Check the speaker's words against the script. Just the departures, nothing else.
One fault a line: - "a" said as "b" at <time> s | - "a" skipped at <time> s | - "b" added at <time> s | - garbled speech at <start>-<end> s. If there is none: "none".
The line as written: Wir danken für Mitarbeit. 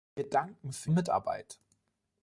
none